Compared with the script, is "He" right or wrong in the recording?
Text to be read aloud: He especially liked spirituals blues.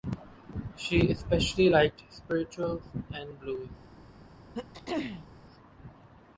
wrong